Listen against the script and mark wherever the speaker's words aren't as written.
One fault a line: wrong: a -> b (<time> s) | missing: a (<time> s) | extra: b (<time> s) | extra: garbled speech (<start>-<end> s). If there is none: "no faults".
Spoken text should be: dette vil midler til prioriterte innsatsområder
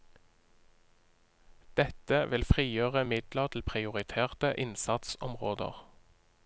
extra: frigjøre (2.5 s)